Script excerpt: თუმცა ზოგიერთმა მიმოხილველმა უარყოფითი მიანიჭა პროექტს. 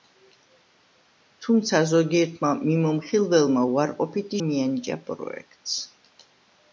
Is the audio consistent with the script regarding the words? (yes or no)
yes